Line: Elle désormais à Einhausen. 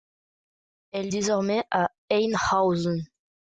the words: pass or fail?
pass